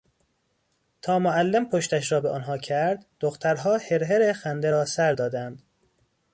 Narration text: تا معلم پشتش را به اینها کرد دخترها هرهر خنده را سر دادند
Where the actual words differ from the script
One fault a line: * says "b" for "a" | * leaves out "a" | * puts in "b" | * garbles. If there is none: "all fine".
* says "آنها" for "اینها"